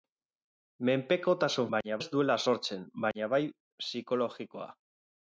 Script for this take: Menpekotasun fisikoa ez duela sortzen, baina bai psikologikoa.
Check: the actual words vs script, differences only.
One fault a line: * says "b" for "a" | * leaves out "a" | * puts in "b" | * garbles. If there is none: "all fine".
* says "baina" for "fisikoa"